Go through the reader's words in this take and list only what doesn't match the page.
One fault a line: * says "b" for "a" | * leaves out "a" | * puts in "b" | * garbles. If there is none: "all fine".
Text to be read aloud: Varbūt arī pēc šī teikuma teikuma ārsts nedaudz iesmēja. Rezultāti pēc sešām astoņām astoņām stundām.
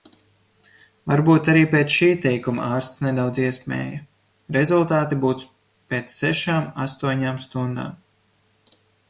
* leaves out "teikuma"
* puts in "būs"
* leaves out "astoņām"